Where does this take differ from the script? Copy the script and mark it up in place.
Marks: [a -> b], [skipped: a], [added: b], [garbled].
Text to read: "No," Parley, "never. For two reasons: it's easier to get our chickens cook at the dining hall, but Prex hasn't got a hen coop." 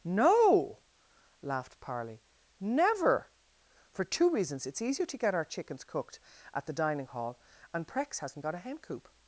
"No," [added: laughed] Parley, "never. For two reasons: it's easier to get our chickens [cook -> cooked] at the dining hall, [but -> and] Prex hasn't got a hen coop."